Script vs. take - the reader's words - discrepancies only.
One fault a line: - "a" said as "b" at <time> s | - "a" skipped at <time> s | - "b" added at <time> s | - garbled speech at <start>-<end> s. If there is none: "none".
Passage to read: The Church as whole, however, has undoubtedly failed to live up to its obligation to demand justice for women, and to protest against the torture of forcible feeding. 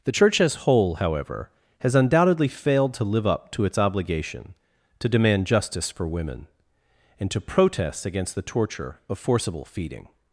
none